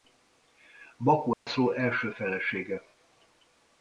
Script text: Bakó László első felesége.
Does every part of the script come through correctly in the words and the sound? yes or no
no